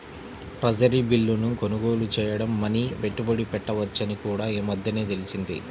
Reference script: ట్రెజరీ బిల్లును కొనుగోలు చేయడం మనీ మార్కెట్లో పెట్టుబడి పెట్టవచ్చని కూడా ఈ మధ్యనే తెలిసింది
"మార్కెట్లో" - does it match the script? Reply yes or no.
no